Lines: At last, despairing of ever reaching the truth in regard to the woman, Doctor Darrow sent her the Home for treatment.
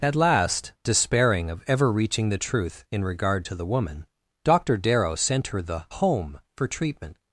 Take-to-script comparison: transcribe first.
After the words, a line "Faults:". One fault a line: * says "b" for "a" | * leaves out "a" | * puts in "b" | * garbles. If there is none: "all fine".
At last, despairing of ever reaching the truth in regard to the woman, Doctor Darrow sent her the Home for treatment.
Faults:
all fine